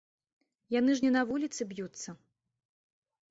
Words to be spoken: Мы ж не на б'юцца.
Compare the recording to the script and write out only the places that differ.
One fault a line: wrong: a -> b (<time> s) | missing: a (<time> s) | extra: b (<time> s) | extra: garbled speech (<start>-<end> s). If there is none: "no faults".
wrong: Мы -> Яны (0.8 s)
extra: вуліцы (1.3 s)